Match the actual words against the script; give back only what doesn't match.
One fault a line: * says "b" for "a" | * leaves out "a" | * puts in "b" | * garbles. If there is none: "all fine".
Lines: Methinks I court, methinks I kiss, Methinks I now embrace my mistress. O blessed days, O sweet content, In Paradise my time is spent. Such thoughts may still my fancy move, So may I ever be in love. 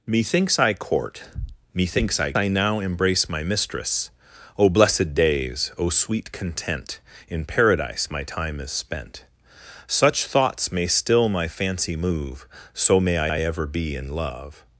* leaves out "kiss Methinks"
* puts in "I"